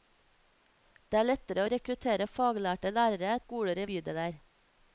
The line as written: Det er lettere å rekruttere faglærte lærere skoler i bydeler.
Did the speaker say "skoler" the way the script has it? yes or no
yes